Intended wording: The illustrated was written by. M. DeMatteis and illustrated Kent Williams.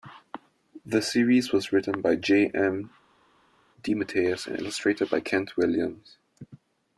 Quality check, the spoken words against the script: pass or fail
fail